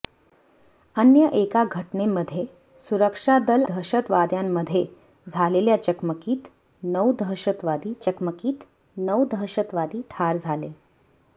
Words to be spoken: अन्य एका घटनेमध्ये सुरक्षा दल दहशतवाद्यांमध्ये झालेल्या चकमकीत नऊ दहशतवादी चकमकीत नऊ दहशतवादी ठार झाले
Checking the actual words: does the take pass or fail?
pass